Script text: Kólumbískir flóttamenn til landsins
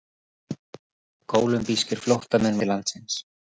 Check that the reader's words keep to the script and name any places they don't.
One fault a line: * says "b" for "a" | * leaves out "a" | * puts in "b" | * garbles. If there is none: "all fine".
all fine